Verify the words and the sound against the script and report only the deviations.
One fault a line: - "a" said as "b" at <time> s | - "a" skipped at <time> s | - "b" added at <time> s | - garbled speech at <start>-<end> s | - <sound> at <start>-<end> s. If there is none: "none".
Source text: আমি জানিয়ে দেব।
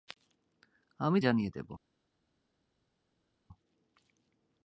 none